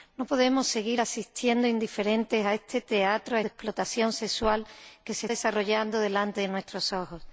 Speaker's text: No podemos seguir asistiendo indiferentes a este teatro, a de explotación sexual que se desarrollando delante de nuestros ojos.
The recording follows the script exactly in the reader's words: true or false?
true